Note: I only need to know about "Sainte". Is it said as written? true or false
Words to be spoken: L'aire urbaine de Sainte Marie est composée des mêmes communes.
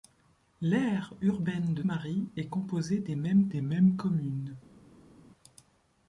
false